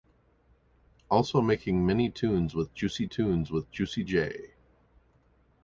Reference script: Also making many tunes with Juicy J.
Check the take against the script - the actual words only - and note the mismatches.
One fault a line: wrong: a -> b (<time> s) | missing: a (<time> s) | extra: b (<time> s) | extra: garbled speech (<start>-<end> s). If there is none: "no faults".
extra: tunes with Juicy (3.0 s)